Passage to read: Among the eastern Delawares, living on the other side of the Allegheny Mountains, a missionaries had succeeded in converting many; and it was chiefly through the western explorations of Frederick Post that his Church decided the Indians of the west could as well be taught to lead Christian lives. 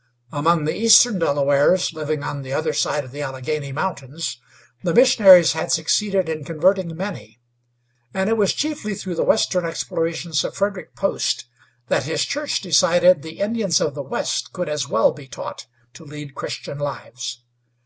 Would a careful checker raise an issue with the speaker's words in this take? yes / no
yes